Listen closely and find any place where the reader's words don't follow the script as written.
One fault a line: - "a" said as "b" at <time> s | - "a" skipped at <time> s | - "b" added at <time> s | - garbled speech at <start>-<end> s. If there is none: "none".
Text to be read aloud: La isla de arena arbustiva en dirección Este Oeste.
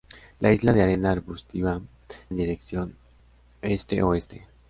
none